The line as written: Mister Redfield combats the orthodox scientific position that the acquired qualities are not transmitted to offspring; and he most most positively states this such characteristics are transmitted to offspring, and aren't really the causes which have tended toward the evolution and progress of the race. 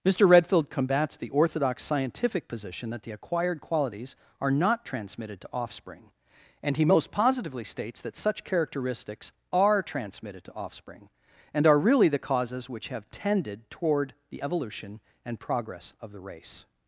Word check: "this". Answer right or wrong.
wrong